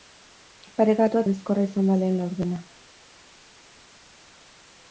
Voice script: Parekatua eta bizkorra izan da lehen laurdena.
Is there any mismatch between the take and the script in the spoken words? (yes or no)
yes